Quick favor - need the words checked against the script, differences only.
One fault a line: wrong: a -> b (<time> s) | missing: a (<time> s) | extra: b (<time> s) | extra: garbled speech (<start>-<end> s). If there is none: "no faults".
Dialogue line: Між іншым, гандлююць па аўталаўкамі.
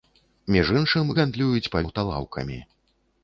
no faults